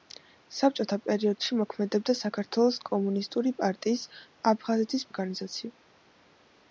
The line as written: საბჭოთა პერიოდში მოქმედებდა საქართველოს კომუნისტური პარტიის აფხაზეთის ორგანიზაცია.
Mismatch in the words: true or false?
false